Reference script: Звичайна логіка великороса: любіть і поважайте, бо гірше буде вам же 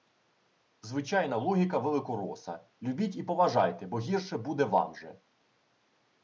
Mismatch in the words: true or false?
false